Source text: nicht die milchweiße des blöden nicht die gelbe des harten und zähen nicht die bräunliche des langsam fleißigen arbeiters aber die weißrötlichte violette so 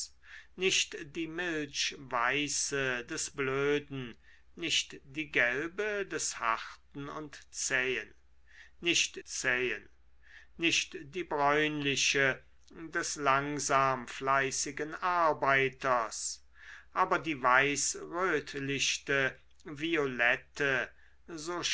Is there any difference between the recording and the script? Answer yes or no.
yes